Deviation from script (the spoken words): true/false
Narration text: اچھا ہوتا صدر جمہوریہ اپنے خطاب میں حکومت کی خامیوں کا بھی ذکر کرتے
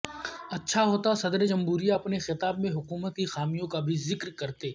false